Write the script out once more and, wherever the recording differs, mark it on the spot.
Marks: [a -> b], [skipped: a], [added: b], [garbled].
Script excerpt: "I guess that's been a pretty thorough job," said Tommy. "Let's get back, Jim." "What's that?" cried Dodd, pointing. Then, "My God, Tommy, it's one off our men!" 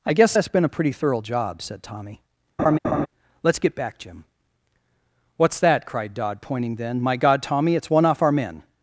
"I guess that's been a pretty thorough job," said Tommy. "Let's get back, Jim." "What's that?" cried Dodd, pointing. Then, "My God, Tommy, it's one off our men!"